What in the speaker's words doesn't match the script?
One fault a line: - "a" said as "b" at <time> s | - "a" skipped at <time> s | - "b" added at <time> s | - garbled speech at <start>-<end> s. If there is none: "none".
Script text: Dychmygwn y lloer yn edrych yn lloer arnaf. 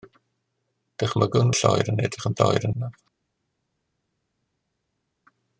none